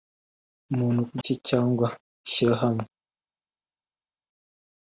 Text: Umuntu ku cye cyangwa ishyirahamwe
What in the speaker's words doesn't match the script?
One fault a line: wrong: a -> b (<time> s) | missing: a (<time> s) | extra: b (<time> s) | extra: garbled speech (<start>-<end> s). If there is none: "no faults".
no faults